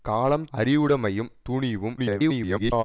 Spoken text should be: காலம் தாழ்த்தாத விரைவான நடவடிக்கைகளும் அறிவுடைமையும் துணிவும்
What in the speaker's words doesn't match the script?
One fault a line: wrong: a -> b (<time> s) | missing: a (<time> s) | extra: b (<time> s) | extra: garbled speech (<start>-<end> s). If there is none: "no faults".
missing: தாழ்த்தாத விரைவான நடவடிக்கைகளும் (0.5 s)
extra: garbled speech (2.0-2.8 s)